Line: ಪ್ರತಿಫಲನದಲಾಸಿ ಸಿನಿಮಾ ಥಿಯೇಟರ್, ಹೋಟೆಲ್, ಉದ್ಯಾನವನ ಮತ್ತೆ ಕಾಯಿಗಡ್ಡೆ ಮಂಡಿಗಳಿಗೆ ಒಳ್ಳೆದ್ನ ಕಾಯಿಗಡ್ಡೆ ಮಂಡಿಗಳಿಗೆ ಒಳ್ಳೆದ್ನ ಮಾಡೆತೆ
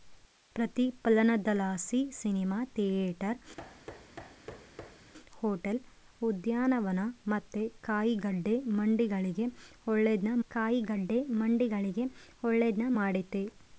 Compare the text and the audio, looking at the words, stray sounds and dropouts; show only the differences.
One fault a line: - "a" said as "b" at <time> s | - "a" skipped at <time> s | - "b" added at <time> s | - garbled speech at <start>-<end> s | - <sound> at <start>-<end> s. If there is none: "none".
- thud at 3.6-5.1 s